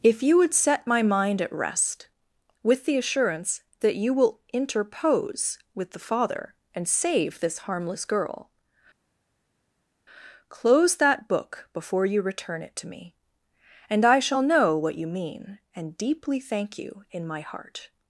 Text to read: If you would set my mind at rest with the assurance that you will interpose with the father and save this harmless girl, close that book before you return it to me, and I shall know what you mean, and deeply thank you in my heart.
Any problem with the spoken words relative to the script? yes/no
no